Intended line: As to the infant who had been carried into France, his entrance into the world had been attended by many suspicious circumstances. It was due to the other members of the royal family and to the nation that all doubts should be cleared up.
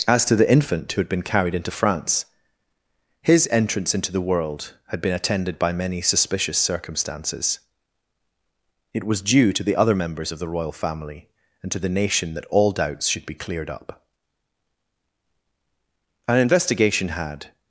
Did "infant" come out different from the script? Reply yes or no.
no